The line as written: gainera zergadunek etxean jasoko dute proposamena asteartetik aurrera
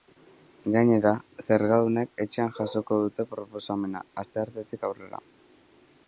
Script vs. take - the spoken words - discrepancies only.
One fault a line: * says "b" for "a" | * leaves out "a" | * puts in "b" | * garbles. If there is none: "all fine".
all fine